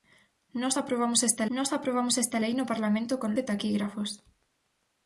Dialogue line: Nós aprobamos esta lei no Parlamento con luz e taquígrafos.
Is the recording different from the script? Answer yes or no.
yes